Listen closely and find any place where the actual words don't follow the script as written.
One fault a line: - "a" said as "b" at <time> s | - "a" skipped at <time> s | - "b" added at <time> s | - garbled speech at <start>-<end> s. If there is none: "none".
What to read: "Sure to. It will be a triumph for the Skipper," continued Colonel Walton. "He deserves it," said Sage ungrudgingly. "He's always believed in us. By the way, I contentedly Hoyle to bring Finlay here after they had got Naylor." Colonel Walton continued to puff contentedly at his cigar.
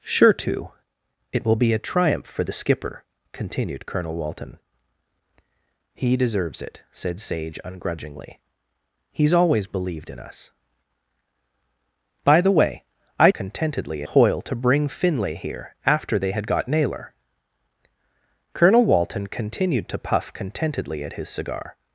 none